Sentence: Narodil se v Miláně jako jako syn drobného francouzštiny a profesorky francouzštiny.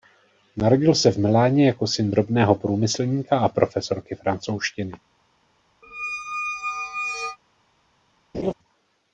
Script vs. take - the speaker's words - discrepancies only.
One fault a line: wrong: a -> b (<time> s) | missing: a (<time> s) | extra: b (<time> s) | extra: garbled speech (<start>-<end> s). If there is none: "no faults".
missing: jako (1.9 s)
wrong: francouzštiny -> průmyslníka (2.5 s)